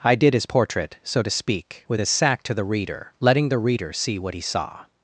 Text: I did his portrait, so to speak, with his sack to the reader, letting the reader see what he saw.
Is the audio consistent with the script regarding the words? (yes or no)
yes